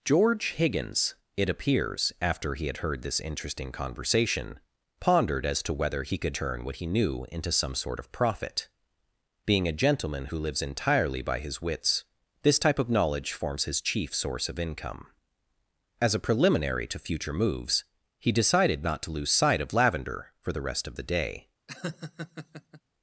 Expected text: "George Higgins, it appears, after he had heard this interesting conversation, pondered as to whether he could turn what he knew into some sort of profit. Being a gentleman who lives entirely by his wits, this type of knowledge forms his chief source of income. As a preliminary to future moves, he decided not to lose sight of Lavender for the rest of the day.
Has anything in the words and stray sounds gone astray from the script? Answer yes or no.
yes